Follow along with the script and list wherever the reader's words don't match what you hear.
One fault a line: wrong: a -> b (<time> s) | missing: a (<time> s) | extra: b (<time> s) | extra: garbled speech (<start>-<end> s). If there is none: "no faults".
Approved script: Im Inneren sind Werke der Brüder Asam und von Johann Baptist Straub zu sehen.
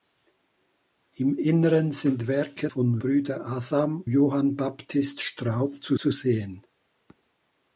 wrong: der -> von (2.7 s)
missing: und von (4.1 s)
extra: zu (6.0 s)